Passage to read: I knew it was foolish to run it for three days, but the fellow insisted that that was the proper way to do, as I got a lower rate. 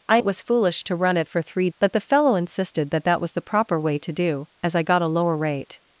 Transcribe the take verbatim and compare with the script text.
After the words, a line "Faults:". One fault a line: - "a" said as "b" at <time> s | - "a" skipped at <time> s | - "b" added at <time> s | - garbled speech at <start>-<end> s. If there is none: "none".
I it was foolish to run it for three but the fellow insisted that that was the proper way to do, as I got a lower rate.
Faults:
- "knew" skipped at 0.2 s
- "days" skipped at 1.7 s